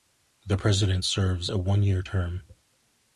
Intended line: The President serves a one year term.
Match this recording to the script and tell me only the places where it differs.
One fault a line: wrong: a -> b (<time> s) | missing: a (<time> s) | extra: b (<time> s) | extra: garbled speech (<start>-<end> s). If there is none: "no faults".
no faults